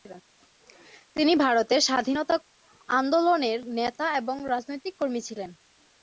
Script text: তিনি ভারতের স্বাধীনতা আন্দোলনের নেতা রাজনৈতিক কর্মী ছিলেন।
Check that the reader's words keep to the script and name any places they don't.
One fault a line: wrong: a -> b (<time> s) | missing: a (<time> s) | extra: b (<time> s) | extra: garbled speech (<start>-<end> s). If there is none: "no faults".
extra: এবং (4.2 s)